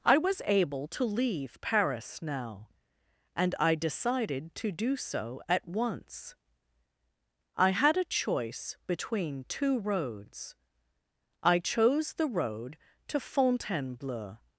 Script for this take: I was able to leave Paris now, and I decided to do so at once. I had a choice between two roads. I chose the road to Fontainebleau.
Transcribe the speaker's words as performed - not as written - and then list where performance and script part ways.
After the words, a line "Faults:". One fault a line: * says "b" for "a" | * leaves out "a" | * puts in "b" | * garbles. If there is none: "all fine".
I was able to leave Paris now, and I decided to do so at once. I had a choice between two roads. I chose the road to Fontainebleau.
Faults:
all fine